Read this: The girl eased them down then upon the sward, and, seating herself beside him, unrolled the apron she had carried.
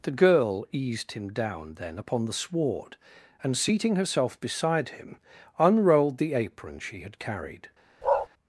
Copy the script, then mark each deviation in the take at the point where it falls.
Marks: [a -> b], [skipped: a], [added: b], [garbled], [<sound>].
The girl eased [them -> him] down then upon the sward, and, seating herself beside him, unrolled the apron she had carried. [bark]